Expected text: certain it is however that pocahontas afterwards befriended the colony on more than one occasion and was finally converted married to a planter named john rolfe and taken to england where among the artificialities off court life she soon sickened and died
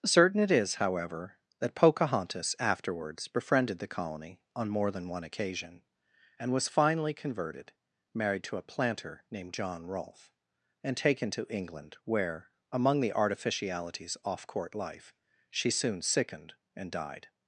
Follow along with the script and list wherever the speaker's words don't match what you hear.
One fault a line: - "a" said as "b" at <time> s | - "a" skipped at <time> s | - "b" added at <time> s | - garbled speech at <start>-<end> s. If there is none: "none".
none